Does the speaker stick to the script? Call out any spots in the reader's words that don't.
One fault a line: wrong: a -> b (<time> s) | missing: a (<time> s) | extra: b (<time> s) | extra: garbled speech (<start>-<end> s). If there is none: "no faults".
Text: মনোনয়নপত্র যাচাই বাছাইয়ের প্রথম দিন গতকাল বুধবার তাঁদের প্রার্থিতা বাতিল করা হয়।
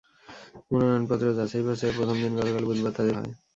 missing: প্রার্থিতা বাতিল করা (3.2 s)